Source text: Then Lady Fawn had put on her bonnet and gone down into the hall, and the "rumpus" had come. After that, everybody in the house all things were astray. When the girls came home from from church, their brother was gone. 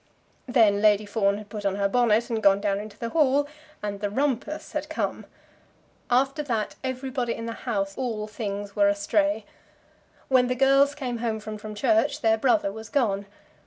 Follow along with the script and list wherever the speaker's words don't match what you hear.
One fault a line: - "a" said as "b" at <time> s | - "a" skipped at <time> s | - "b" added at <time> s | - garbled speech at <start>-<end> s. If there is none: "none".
none